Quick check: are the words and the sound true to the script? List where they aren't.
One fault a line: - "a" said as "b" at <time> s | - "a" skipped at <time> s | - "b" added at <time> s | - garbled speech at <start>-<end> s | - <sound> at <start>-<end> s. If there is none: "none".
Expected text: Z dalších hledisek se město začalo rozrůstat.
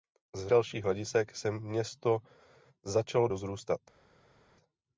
none